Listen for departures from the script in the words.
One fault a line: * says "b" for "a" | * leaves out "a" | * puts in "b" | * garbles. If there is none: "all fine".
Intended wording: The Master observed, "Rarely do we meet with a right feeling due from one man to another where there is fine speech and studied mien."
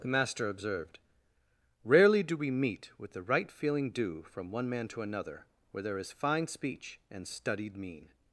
* says "the" for "a"